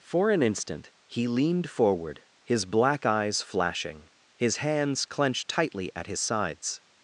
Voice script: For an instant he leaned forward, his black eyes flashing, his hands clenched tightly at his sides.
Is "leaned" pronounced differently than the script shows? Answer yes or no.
no